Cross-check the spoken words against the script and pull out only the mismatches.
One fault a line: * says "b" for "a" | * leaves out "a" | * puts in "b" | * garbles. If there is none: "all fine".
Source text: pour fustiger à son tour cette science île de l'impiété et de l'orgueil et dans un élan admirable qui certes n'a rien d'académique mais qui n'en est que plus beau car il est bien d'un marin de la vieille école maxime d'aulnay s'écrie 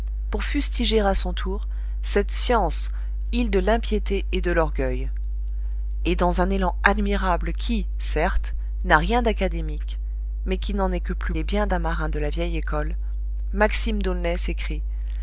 * leaves out "beau car il"